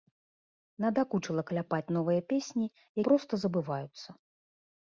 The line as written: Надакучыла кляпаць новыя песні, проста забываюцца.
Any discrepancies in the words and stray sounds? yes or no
no